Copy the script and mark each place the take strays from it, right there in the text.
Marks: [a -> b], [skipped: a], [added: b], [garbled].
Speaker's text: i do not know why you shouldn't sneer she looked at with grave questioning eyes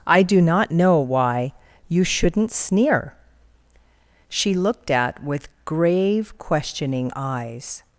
i do not know why you shouldn't sneer she looked at with grave questioning eyes